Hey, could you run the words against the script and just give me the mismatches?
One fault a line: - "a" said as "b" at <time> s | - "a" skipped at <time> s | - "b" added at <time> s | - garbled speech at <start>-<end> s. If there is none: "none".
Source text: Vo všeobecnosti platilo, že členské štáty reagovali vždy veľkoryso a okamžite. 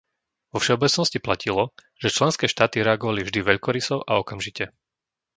none